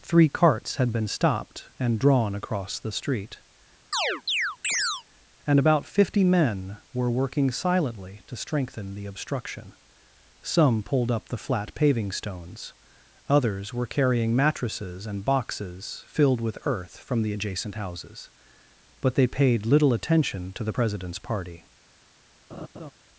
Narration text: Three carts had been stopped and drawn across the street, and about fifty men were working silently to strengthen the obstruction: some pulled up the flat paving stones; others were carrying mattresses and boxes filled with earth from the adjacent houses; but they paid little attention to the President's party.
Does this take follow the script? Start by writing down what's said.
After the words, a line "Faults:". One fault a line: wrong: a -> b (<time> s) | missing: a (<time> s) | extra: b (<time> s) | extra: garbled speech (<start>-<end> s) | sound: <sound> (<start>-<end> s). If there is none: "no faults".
Three carts had been stopped and drawn across the street, and about fifty men were working silently to strengthen the obstruction: some pulled up the flat paving stones; others were carrying mattresses and boxes filled with earth from the adjacent houses; but they paid little attention to the President's party.
Faults:
sound: chirp (3.9-5.0 s)
sound: laugh (22.5-22.9 s)